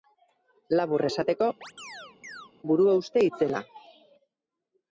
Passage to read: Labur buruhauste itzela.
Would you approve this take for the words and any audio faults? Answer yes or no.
no